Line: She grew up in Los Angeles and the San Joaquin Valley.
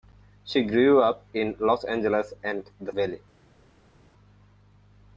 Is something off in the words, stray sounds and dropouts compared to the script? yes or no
yes